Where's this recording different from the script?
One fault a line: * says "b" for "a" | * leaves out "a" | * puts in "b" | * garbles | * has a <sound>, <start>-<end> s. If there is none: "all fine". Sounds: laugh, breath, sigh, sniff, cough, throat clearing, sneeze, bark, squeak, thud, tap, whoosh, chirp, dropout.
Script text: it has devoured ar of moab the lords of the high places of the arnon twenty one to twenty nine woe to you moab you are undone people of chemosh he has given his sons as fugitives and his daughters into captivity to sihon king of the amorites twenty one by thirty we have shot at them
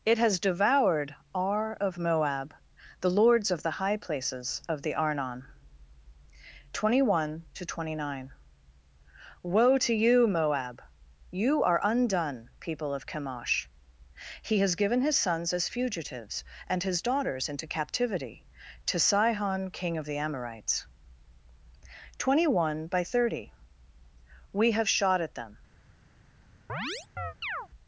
* has a chirp, 26.7-27.7 s